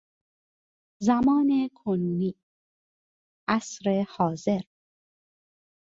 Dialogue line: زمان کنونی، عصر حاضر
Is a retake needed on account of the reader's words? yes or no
no